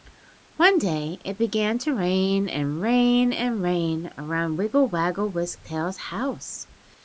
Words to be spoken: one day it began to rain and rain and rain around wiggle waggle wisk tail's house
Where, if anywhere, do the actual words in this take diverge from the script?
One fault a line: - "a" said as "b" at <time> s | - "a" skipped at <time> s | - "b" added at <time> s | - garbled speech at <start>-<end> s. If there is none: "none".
none